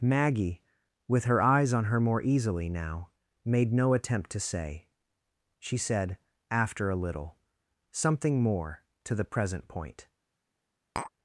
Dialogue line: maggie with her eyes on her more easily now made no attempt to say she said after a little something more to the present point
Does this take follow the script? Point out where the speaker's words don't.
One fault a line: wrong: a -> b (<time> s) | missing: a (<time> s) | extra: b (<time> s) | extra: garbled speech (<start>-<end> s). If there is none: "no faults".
no faults